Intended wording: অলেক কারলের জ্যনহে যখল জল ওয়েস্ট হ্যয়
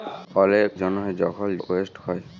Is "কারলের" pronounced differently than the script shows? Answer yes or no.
yes